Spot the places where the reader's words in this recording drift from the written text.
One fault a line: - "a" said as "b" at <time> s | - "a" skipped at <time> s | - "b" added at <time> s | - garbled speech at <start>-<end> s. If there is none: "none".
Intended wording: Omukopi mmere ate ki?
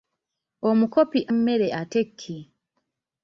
none